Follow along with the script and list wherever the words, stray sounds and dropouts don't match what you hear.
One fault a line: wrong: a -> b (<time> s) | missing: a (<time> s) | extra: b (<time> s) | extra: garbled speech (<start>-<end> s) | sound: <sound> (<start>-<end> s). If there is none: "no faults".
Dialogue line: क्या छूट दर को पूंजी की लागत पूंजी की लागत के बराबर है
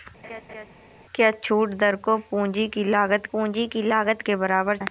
sound: laugh (0.2-0.7 s)